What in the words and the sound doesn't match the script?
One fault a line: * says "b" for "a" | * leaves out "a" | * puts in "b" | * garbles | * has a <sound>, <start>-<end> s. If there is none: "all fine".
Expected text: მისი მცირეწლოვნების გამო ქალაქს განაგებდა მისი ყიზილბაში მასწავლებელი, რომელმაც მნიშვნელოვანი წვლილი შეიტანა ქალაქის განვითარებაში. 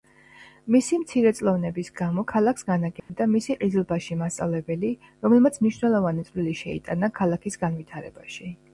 * has a dropout, 3.0-3.1 s